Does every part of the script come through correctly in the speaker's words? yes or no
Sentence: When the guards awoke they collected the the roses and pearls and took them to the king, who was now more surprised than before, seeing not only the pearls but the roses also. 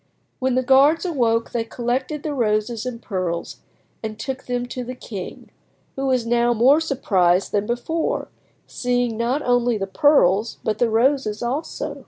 no